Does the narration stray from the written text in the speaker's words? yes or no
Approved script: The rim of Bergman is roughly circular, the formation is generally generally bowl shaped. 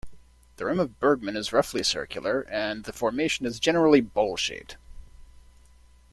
yes